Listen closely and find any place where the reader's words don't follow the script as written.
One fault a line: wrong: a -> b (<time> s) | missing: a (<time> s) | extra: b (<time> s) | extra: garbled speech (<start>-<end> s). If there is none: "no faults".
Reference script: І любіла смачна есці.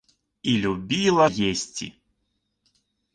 missing: смачна (1.3 s)